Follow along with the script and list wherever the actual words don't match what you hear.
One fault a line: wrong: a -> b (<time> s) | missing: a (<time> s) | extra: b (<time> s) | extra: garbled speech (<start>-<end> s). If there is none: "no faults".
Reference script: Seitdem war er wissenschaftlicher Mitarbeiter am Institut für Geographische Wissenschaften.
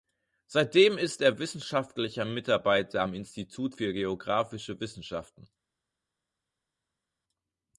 wrong: war -> ist (1.0 s)